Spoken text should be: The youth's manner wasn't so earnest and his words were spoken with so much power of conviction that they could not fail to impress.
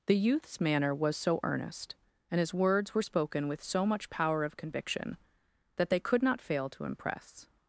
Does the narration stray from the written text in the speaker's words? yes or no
yes